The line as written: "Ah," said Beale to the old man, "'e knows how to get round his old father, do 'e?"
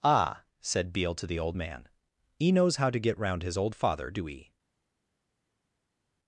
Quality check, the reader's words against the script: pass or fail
pass